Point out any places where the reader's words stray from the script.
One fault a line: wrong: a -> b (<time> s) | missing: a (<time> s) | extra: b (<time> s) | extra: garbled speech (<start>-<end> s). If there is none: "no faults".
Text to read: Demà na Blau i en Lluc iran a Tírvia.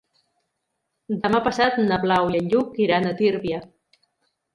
extra: passat (1.5 s)